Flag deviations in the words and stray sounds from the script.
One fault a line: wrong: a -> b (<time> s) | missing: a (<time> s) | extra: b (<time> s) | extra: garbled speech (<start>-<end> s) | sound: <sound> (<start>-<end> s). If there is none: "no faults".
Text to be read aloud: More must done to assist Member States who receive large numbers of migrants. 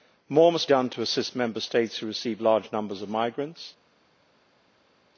no faults